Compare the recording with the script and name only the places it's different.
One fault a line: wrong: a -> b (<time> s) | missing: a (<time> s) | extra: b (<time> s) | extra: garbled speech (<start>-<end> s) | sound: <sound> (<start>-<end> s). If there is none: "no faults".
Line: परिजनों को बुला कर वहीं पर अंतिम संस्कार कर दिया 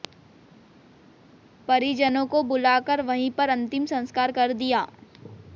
no faults